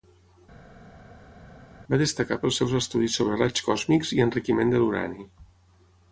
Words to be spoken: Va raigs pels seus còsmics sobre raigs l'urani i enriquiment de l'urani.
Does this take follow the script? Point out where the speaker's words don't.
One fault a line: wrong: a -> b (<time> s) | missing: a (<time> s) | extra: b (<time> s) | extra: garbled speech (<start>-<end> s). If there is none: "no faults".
wrong: raigs -> destacar (2.0 s)
wrong: còsmics -> estudis (2.8 s)
wrong: l'urani -> còsmics (3.7 s)